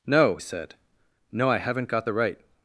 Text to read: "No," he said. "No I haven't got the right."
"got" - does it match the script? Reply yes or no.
yes